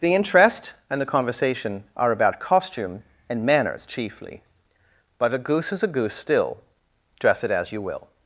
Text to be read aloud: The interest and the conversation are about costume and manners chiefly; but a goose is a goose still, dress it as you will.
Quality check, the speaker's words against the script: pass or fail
pass